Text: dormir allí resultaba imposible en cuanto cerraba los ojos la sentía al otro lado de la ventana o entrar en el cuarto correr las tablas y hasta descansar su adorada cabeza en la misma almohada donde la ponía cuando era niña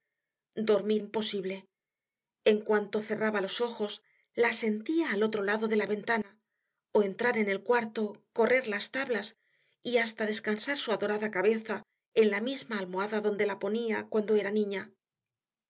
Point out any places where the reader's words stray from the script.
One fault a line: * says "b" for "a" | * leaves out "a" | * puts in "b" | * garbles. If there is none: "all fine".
* leaves out "allí resultaba"